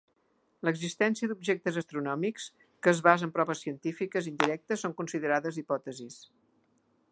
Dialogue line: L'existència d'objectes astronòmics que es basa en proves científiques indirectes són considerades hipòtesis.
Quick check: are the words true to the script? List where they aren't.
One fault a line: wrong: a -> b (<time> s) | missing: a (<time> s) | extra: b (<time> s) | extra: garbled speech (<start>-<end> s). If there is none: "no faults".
no faults